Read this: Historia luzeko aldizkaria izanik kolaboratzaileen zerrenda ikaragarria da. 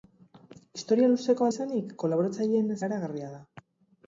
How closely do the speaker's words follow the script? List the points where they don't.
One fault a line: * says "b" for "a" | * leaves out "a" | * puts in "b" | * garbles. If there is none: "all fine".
* leaves out "aldizkaria"
* leaves out "zerrenda"